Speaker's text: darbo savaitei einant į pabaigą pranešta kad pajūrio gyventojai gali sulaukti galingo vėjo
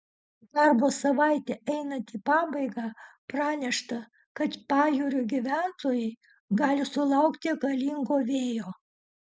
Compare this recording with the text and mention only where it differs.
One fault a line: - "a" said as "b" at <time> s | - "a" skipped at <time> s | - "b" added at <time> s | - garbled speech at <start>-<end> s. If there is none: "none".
none